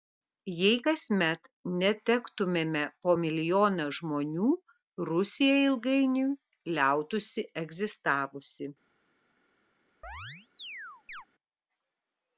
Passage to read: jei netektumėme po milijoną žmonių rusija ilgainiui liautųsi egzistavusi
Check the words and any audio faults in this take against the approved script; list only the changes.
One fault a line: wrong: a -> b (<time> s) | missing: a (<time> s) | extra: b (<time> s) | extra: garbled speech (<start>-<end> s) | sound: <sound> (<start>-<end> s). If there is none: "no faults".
extra: kasmet (0.9 s)
sound: chirp (10.0-11.3 s)